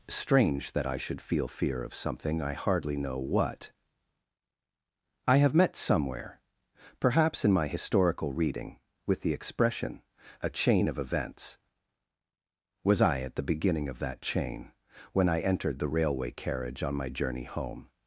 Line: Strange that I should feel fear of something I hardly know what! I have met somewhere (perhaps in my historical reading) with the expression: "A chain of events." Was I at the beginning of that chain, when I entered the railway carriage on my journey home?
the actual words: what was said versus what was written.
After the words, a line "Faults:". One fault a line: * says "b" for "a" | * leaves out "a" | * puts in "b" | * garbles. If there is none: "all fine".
Strange that I should feel fear of something I hardly know what! I have met somewhere (perhaps in my historical reading) with the expression: "A chain of events." Was I at the beginning of that chain, when I entered the railway carriage on my journey home?
Faults:
all fine